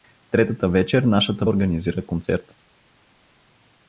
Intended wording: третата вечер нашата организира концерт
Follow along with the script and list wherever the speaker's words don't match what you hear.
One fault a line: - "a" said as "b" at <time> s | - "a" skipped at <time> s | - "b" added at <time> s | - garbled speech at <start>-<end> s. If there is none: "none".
none